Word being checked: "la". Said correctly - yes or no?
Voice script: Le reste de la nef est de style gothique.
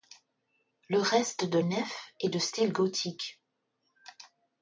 no